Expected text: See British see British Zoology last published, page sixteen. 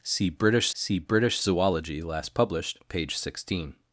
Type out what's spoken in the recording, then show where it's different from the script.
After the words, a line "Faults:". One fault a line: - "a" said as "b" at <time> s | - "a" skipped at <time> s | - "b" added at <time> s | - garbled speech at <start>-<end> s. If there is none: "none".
See British see British Zoology last published, page sixteen.
Faults:
none